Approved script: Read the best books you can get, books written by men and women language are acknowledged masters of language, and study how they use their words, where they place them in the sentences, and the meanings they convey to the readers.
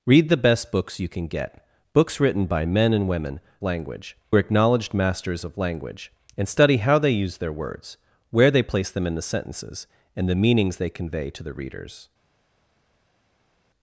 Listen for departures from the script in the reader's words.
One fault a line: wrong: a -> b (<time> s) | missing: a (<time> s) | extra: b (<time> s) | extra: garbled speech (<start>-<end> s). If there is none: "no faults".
no faults